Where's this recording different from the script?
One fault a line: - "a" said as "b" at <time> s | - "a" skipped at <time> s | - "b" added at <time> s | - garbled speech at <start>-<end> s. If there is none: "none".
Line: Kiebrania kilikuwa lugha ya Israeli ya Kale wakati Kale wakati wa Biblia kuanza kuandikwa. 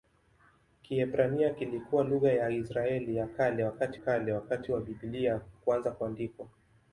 none